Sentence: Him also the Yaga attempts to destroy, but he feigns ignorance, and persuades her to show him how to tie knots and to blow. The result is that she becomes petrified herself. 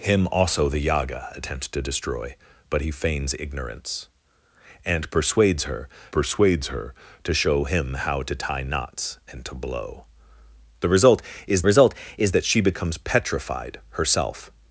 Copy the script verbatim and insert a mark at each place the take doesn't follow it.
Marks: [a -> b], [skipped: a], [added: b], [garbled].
Him also the Yaga attempts to destroy, but he feigns ignorance, and persuades her [added: persuades her] to show him how to tie knots and to blow. The result is [added: result is] that she becomes petrified herself.